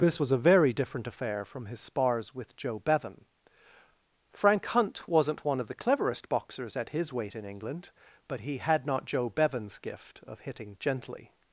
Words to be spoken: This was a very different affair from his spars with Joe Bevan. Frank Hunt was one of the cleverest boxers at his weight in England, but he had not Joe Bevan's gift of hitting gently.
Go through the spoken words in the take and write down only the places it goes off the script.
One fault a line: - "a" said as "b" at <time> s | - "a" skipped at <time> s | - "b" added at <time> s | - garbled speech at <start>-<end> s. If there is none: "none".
- "was" said as "wasn't" at 5.1 s